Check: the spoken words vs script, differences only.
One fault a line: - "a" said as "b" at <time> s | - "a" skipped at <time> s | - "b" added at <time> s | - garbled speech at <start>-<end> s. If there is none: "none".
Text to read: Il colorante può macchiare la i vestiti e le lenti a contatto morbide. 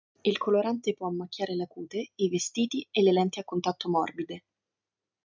- "cute" added at 1.7 s